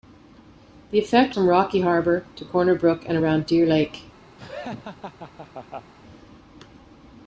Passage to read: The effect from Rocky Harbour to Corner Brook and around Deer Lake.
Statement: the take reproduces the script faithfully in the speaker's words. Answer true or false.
true